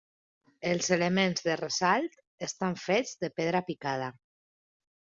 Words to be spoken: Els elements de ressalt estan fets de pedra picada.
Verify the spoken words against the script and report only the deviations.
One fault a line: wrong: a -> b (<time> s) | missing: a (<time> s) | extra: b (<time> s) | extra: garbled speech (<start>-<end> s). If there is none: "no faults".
no faults